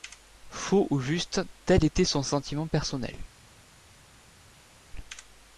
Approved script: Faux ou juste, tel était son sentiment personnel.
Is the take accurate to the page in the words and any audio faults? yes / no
yes